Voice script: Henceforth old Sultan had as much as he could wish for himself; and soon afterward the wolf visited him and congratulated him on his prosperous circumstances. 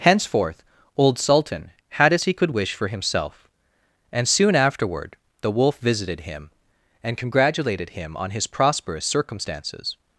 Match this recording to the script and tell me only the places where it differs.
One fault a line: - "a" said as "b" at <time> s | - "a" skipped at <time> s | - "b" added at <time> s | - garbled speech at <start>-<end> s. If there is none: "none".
- "much as" skipped at 2.2 s